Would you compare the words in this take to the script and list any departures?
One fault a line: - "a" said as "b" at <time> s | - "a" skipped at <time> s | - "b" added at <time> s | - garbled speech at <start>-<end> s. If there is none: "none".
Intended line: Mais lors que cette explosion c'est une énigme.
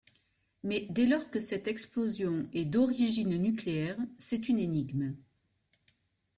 - "dès" added at 0.9 s
- "est d'origine nucléaire" added at 2.5 s